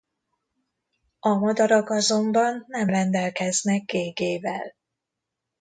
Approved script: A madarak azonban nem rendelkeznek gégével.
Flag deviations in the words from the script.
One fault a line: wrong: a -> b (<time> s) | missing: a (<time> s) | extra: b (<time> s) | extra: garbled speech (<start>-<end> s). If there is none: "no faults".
no faults